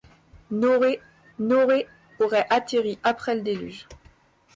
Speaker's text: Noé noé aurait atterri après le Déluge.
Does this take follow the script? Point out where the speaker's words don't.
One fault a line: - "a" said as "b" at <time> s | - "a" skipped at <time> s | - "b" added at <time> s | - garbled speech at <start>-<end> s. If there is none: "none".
none